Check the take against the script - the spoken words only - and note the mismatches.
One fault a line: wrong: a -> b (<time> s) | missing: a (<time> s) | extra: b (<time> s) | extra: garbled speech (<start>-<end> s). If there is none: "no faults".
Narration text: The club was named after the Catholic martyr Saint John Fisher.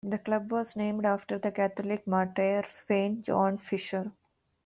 no faults